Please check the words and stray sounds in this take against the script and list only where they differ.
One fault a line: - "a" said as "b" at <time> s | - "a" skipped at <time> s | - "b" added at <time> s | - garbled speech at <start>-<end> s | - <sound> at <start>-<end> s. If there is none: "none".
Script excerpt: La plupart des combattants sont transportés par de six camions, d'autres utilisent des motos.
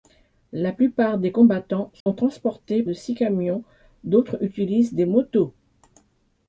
- dropout at 2.0-2.1 s
- "par" skipped at 2.8 s